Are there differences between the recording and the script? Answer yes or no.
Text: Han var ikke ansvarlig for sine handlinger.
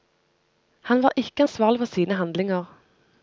no